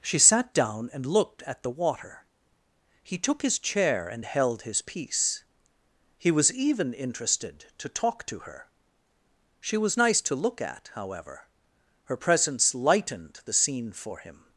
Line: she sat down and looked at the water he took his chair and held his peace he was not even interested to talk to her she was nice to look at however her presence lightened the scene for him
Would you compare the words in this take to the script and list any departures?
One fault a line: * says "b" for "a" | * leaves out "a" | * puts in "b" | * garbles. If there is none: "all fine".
* leaves out "not"